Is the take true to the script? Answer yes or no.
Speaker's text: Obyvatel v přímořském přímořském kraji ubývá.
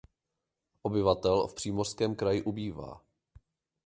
no